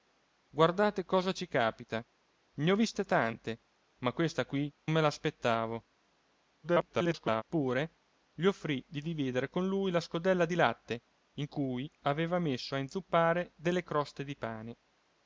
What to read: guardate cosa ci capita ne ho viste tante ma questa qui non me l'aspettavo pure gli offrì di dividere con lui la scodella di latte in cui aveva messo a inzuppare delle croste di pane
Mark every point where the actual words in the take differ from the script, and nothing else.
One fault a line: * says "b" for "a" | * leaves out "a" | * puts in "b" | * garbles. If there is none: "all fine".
* leaves out "non"
* garbles